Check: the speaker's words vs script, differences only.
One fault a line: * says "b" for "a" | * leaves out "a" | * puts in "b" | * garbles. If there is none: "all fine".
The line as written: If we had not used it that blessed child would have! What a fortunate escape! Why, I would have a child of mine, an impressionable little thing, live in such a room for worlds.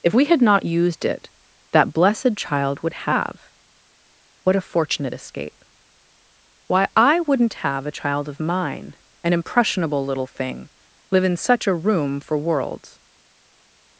* says "wouldn't" for "would"